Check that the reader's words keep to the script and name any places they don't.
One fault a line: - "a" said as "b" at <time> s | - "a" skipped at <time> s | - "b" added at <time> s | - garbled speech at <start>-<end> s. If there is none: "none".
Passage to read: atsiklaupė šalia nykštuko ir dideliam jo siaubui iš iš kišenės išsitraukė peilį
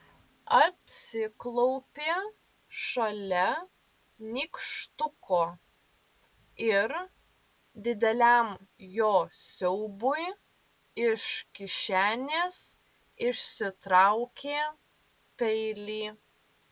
- "iš" skipped at 11.3 s